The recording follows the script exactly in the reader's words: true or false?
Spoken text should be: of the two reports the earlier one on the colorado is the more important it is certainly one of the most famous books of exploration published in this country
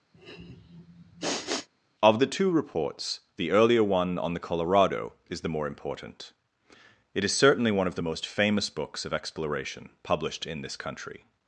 true